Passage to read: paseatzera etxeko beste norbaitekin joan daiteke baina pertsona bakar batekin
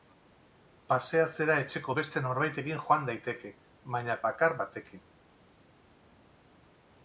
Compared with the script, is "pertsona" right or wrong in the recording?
wrong